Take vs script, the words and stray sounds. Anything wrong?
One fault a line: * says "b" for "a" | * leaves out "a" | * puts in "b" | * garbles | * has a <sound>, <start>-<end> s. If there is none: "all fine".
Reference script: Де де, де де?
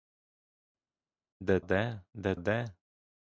all fine